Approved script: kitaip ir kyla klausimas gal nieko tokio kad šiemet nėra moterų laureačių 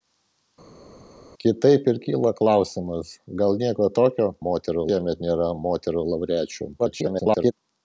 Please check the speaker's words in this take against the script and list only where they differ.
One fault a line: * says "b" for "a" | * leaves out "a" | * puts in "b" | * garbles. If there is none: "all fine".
* says "moterų" for "kad"
* garbles